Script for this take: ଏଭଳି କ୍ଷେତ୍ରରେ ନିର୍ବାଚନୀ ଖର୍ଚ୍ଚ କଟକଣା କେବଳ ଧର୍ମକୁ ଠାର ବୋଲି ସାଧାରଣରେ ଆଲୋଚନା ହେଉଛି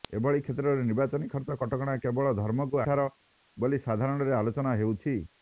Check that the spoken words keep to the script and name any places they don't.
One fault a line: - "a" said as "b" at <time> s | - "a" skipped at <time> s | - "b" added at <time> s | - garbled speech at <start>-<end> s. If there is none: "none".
none